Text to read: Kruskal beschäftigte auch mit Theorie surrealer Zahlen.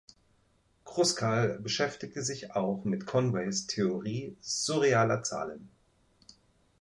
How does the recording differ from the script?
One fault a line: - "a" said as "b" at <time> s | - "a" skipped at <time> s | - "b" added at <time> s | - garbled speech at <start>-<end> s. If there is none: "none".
- "sich" added at 2.2 s
- "Conways" added at 3.1 s